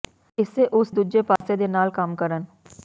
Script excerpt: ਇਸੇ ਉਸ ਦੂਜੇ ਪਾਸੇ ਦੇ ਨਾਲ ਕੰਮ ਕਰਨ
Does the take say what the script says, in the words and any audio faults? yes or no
no